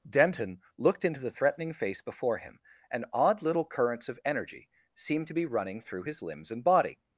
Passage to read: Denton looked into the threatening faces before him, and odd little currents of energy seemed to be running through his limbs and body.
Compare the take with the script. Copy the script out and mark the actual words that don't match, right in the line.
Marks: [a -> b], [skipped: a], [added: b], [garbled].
Denton looked into the threatening [faces -> face] before him, and odd little currents of energy seemed to be running through his limbs and body.